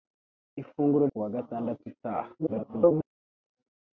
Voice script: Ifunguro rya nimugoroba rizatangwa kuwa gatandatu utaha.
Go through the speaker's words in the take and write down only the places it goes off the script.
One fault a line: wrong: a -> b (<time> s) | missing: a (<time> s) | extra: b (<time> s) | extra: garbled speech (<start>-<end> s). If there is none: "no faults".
missing: rya nimugoroba rizatangwa (1.1 s)
extra: garbled speech (2.4-3.1 s)